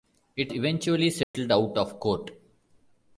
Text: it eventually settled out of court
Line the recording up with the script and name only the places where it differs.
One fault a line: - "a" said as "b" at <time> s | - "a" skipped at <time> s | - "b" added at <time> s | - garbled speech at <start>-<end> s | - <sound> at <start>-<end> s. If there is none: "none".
- dropout at 1.2-1.3 s